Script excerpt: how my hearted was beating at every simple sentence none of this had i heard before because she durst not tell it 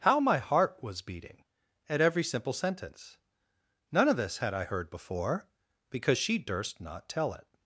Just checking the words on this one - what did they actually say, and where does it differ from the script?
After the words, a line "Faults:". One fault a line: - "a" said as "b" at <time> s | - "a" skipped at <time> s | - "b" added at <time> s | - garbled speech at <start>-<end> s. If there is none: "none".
how my heart was beating at every simple sentence none of this had i heard before because she durst not tell it
Faults:
- "hearted" said as "heart" at 0.4 s